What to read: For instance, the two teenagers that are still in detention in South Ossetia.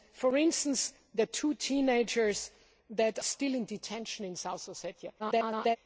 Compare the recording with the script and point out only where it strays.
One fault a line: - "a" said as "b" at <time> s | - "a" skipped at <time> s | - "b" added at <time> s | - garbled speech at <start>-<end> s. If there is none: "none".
- "are" skipped at 3.2 s
- garbled speech at 5.2-5.8 s